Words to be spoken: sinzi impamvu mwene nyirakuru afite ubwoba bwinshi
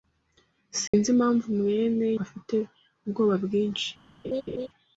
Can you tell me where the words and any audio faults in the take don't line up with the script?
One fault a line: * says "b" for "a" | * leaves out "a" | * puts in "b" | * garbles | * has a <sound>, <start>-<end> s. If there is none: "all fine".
* has a dropout, 0.9-0.9 s
* leaves out "nyirakuru"
* has a laugh, 4.2-4.7 s